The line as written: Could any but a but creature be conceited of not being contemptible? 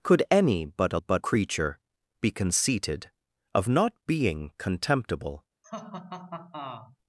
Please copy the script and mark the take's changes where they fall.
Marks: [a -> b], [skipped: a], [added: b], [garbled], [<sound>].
Could any but a but creature be conceited of not being contemptible? [laugh]